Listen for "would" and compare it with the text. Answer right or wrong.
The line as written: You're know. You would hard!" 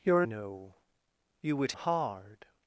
right